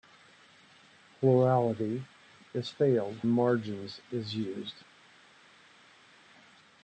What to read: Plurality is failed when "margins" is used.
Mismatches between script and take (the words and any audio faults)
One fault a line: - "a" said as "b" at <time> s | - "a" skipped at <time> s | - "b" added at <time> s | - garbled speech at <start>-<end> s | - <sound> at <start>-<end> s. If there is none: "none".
- "when" skipped at 3.2 s